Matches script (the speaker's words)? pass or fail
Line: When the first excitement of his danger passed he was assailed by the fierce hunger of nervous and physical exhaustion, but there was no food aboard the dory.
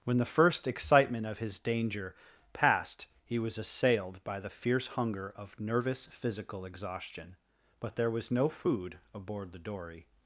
fail